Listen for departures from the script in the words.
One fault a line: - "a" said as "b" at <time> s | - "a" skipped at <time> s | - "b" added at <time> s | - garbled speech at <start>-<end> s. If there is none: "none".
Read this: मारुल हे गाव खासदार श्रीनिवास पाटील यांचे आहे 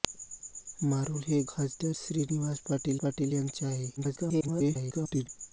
- "गाव" skipped at 1.4 s
- "पाटील" added at 3.0 s
- garbled speech at 4.0-5.3 s